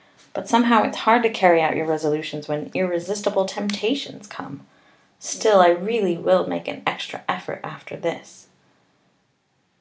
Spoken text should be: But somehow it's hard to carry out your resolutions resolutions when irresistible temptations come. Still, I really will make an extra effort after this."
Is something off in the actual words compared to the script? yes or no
yes